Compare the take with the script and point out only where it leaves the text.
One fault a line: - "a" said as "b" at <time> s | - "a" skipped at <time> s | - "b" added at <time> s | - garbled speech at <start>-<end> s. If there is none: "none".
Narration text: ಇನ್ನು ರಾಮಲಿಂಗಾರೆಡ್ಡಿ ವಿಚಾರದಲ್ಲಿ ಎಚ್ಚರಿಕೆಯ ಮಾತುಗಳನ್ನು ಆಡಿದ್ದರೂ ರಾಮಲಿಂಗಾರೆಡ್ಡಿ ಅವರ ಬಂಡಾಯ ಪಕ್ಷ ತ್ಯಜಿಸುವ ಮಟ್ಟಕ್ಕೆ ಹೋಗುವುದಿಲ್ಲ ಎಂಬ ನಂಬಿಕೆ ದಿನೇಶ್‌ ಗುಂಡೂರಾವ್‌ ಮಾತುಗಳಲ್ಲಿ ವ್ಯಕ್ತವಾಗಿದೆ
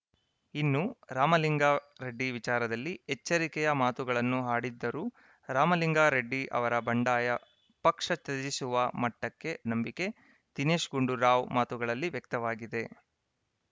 - "ಹೋಗುವುದಿಲ್ಲ ಎಂಬ" skipped at 9.5 s